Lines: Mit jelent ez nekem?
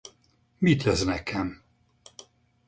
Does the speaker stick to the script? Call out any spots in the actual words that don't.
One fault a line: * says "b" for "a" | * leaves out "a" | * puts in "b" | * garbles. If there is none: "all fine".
* leaves out "jelent"